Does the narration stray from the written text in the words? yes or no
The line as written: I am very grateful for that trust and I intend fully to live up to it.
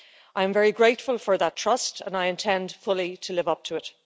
no